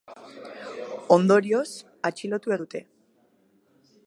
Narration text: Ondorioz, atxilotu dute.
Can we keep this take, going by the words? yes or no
yes